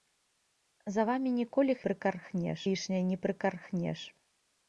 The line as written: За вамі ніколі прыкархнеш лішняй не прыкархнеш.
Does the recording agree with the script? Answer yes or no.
yes